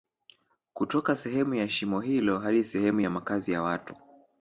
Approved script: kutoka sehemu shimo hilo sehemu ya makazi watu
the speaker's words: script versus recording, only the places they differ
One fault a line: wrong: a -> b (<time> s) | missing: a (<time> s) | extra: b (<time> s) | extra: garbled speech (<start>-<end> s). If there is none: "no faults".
extra: ya (1.6 s)
extra: hadi (2.4 s)
extra: ya (3.5 s)